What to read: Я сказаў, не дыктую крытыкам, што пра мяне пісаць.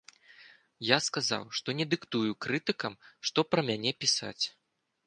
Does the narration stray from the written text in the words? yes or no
yes